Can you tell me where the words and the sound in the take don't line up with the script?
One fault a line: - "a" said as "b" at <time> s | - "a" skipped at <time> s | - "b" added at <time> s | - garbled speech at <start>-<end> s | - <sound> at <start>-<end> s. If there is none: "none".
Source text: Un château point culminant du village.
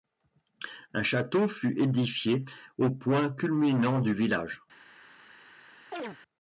- "fut édifié au" added at 1.5 s
- chirp at 5.9-6.2 s